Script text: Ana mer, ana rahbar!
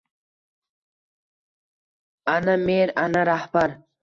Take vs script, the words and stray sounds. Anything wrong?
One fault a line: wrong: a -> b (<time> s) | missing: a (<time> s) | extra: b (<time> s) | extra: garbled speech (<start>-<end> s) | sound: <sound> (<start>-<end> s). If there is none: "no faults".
no faults